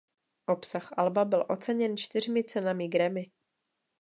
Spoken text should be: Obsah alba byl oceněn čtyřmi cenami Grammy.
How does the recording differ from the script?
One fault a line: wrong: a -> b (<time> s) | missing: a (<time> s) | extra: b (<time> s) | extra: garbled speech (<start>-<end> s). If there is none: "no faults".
no faults